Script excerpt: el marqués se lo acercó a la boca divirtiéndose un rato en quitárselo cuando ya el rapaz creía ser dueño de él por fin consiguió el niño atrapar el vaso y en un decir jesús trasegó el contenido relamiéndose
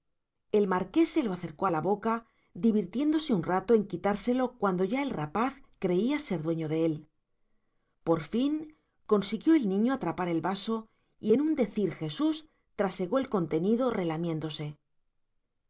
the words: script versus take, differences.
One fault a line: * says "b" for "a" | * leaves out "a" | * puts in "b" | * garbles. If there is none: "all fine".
all fine